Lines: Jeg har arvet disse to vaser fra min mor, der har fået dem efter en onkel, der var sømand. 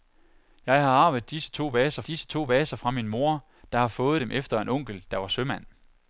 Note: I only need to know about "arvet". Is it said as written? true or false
true